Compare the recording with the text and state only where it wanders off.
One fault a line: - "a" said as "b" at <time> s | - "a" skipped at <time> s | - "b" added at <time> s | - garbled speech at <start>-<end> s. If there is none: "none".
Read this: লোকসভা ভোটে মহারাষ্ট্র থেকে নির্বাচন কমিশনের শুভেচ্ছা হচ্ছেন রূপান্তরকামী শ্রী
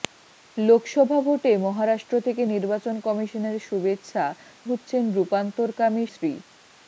none